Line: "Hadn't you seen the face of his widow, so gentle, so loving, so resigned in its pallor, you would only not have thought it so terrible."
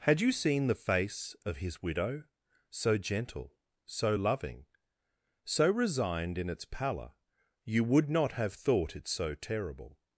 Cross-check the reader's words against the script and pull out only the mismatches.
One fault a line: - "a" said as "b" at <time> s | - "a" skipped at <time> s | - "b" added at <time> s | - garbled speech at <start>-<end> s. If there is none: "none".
- "Hadn't" said as "Had" at 0.0 s
- "only" skipped at 8.1 s